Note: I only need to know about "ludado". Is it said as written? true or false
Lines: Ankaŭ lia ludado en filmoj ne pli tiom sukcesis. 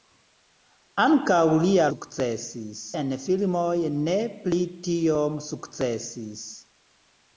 false